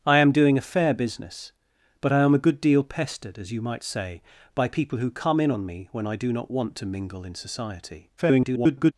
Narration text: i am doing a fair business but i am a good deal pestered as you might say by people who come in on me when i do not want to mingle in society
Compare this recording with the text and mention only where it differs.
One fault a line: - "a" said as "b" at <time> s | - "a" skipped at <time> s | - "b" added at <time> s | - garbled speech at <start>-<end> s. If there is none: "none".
- garbled speech at 8.2-8.9 s